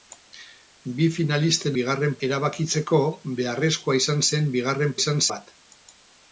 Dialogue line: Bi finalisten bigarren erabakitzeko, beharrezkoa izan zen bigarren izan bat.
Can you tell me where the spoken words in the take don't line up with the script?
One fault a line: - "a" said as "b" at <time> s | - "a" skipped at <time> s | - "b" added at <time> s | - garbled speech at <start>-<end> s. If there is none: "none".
none